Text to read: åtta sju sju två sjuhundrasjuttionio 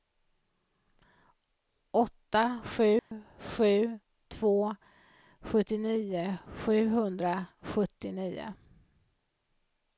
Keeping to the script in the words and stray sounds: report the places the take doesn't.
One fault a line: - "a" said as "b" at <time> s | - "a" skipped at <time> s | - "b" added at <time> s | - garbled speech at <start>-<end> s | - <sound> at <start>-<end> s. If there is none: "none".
- dropout at 3.0-3.1 s
- "sjuttionio" added at 5.4 s